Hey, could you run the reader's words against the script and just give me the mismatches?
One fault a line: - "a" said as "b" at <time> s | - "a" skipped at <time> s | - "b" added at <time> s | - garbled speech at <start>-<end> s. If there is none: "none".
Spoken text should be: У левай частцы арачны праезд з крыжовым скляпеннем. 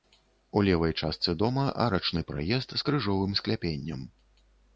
- "дома" added at 1.4 s